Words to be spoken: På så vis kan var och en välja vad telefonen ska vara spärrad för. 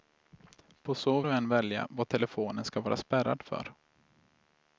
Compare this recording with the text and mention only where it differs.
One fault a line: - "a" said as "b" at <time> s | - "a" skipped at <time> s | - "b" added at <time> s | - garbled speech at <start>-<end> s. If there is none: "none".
- "vis kan var" skipped at 1.2 s